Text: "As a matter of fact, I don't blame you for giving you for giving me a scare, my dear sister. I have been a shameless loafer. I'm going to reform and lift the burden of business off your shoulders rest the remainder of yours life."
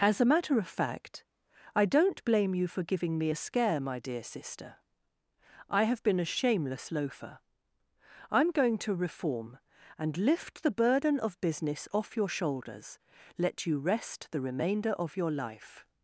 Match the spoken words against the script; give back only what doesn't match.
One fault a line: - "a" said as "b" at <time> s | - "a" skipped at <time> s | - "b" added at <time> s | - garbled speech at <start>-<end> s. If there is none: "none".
- "you for giving" skipped at 3.2 s
- "let you" added at 13.4 s
- "yours" said as "your" at 15.2 s